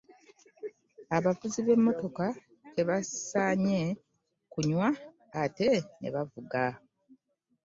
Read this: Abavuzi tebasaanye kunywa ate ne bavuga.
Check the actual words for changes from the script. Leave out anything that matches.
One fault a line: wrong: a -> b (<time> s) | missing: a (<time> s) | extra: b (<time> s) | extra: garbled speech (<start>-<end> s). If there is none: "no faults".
extra: b'emmotoka (1.6 s)